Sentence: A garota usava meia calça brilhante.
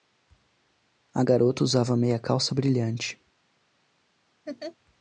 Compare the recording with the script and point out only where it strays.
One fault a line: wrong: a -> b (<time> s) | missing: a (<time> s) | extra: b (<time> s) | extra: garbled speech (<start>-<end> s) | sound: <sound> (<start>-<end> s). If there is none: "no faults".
sound: laugh (4.5-4.8 s)